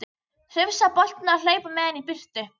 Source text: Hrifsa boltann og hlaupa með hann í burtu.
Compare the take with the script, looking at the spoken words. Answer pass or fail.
pass